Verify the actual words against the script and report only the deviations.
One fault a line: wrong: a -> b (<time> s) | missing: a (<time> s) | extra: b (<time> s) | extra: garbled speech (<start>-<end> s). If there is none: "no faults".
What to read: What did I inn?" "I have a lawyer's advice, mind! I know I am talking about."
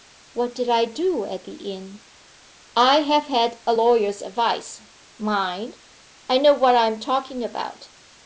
extra: do at the (0.8 s)
extra: had (3.2 s)
extra: what (6.5 s)